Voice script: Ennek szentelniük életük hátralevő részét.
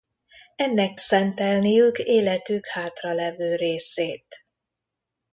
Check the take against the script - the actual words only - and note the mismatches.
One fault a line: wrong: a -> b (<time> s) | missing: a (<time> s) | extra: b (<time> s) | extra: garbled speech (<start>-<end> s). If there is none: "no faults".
no faults